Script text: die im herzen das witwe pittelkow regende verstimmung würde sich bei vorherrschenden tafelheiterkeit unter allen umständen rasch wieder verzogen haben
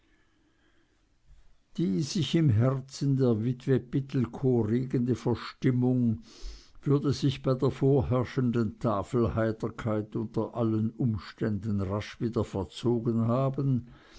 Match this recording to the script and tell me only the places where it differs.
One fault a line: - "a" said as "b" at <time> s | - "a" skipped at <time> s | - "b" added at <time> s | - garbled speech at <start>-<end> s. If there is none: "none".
- "sich" added at 2.0 s
- "das" said as "der" at 3.2 s
- "der" added at 7.5 s